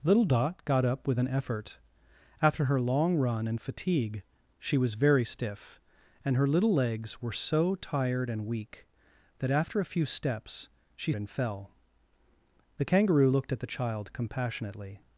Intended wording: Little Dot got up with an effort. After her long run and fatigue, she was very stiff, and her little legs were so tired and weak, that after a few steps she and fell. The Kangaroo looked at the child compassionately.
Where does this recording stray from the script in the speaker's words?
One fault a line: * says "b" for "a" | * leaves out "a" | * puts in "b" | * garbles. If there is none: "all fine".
all fine